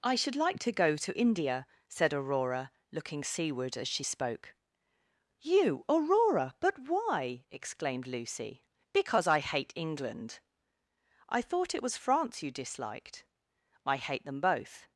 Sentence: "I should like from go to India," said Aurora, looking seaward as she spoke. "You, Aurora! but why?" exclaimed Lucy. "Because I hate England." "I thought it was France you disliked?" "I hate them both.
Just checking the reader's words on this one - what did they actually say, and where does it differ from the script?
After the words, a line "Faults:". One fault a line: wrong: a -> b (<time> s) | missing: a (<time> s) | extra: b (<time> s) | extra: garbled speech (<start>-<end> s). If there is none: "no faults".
"I should like to go to India," said Aurora, looking seaward as she spoke. "You, Aurora! but why?" exclaimed Lucy. "Because I hate England." "I thought it was France you disliked?" "I hate them both.
Faults:
wrong: from -> to (0.6 s)